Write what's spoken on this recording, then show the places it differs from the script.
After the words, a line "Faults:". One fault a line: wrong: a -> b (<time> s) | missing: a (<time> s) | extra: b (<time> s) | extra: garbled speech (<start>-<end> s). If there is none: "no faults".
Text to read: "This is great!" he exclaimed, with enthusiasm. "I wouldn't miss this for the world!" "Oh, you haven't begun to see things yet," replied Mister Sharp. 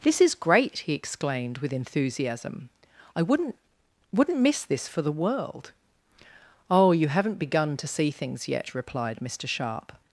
"This is great!" he exclaimed, with enthusiasm. "I wouldn't wouldn't miss this for the world!" "Oh, you haven't begun to see things yet," replied Mister Sharp.
Faults:
extra: wouldn't (4.1 s)